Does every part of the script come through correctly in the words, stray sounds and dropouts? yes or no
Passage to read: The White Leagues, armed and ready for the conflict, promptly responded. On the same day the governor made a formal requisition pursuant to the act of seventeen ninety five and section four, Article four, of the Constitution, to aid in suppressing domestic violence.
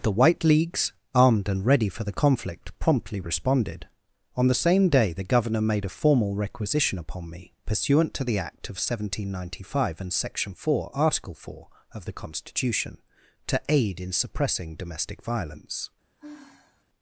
no